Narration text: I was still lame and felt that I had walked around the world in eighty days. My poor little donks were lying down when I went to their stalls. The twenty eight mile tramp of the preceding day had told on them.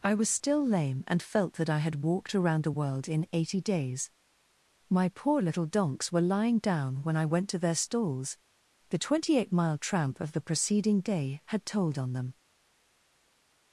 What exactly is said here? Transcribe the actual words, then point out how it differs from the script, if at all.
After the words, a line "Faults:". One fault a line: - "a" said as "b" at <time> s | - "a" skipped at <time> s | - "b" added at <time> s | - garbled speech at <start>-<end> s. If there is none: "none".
I was still lame and felt that I had walked around the world in eighty days. My poor little donks were lying down when I went to their stalls. The twenty eight mile tramp of the preceding day had told on them.
Faults:
none